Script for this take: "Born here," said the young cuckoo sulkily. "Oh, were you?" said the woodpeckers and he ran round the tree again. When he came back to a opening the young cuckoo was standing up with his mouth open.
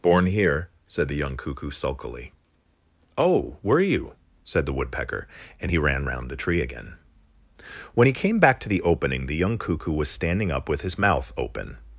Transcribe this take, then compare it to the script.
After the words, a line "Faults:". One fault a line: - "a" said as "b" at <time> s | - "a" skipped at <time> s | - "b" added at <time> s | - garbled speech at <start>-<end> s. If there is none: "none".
"Born here," said the young cuckoo sulkily. "Oh, were you?" said the woodpecker and he ran round the tree again. When he came back to the opening the young cuckoo was standing up with his mouth open.
Faults:
- "woodpeckers" said as "woodpecker" at 4.7 s
- "a" said as "the" at 8.7 s